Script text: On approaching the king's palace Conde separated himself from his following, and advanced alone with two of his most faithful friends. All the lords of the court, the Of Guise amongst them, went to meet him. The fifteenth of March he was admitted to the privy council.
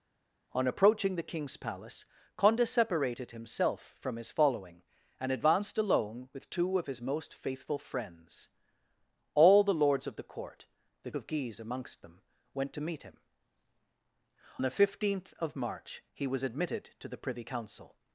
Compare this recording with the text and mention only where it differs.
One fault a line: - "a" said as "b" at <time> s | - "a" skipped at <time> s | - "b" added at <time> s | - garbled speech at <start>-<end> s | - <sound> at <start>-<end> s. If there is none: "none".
none